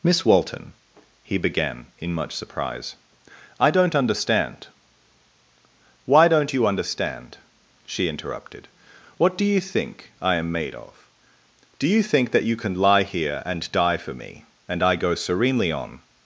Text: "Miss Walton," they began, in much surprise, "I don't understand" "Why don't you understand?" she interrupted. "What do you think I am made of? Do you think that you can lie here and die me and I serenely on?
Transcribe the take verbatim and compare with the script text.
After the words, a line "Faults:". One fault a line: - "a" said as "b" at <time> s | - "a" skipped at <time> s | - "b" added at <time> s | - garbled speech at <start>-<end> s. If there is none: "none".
"Miss Walton," he began, in much surprise, "I don't understand" "Why don't you understand?" she interrupted. "What do you think I am made of? Do you think that you can lie here and die for me and I go serenely on?
Faults:
- "they" said as "he" at 1.2 s
- "for" added at 14.0 s
- "go" added at 14.9 s